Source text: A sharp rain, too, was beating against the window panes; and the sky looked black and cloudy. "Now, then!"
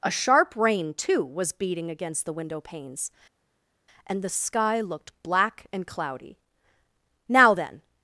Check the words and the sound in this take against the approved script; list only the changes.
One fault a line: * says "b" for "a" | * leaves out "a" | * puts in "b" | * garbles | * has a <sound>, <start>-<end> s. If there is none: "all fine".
all fine